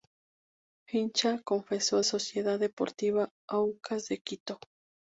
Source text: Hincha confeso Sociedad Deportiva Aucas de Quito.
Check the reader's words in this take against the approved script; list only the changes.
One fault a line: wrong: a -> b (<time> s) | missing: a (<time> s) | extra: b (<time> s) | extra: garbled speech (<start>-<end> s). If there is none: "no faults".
no faults